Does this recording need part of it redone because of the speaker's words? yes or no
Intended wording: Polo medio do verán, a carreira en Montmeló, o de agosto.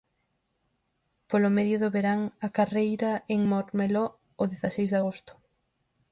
yes